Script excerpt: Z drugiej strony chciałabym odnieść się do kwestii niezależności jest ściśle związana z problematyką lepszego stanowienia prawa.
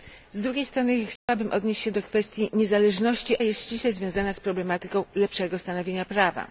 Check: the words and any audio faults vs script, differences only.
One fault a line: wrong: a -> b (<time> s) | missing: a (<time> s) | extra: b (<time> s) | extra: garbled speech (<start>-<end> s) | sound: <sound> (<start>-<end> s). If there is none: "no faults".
sound: dropout (1.2-1.3 s)